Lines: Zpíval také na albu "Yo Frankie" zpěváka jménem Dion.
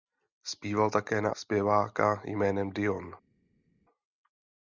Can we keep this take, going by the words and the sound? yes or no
no